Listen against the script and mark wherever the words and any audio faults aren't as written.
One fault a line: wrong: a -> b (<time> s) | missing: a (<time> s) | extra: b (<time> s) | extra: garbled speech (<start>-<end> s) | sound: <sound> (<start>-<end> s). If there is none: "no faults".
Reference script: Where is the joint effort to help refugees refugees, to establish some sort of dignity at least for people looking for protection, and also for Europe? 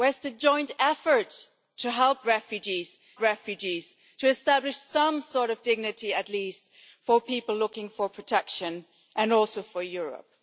no faults